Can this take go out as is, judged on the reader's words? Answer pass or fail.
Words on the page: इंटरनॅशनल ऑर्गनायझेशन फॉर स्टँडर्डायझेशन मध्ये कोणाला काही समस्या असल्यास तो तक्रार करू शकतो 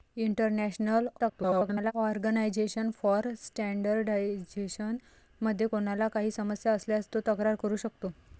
fail